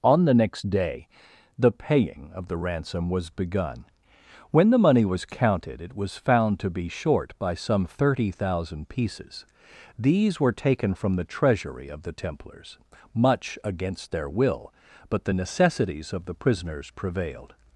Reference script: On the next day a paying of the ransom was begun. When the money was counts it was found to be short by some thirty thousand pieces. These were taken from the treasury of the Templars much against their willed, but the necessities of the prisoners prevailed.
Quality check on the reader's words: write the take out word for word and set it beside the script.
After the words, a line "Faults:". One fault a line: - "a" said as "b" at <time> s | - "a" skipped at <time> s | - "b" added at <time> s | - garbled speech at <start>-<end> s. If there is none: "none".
On the next day the paying of the ransom was begun. When the money was counted it was found to be short by some thirty thousand pieces. These were taken from the treasury of the Templars much against their will, but the necessities of the prisoners prevailed.
Faults:
- "a" said as "the" at 1.6 s
- "counts" said as "counted" at 5.2 s
- "willed" said as "will" at 14.3 s